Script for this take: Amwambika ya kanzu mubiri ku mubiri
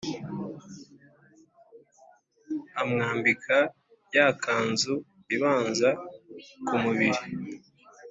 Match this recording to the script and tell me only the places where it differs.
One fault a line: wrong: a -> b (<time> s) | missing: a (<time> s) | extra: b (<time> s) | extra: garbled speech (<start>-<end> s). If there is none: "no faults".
wrong: mubiri -> ibanza (5.3 s)